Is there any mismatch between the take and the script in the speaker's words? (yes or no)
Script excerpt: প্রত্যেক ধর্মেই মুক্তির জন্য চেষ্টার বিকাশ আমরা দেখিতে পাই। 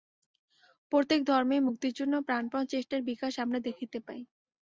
yes